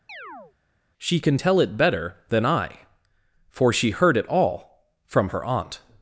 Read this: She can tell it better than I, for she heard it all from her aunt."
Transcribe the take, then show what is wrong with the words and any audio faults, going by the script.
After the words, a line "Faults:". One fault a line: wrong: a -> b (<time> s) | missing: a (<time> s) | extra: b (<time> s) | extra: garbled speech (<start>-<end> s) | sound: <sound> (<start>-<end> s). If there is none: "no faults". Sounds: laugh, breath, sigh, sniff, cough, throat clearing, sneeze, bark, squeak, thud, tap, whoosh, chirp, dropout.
She can tell it better than I, for she heard it all from her aunt."
Faults:
sound: chirp (0.1-0.5 s)